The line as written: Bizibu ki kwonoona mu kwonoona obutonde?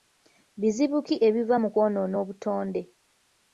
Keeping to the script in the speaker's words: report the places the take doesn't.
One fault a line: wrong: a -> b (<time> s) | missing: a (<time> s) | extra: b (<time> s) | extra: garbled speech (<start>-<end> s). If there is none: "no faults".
wrong: kwonoona -> ebiva (1.3 s)